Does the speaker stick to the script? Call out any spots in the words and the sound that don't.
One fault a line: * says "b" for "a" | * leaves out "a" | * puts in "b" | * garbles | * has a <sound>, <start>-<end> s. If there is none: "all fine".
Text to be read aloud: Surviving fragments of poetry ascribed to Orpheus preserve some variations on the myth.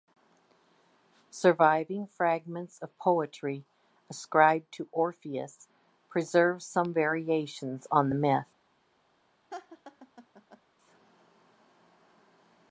* has a laugh, 9.5-10.6 s